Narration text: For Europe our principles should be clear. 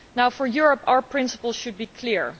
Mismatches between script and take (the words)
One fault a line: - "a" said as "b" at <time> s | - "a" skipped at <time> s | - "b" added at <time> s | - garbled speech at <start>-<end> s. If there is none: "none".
none